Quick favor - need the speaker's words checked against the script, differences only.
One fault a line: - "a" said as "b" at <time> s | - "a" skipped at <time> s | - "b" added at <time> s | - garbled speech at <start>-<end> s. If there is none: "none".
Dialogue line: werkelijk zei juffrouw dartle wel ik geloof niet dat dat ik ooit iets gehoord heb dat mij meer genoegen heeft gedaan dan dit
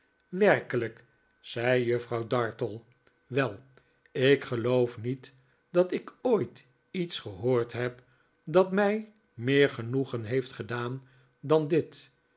- "dat" skipped at 5.9 s